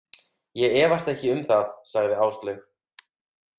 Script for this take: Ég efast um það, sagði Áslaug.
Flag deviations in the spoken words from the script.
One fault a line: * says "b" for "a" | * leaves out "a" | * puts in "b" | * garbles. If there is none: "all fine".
* puts in "ekki"